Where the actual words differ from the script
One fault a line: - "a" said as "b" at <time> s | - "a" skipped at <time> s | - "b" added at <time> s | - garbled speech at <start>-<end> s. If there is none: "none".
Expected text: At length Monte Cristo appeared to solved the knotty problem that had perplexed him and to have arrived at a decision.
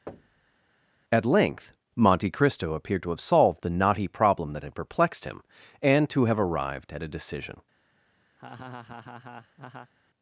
- "have" added at 3.1 s